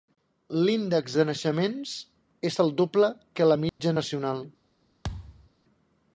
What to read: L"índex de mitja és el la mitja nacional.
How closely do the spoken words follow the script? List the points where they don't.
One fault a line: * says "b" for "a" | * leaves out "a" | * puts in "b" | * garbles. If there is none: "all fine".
* says "naixements" for "mitja"
* puts in "doble que"